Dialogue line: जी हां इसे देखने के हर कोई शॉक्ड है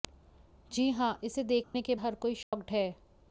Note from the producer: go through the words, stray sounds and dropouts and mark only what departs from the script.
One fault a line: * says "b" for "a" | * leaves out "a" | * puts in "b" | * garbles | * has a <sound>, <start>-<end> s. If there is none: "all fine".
* has a dropout, 1.6-1.7 s
* has a dropout, 2.4-2.5 s